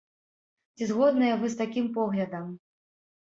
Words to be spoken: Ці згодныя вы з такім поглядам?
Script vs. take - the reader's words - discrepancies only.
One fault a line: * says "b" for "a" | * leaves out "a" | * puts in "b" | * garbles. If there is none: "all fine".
all fine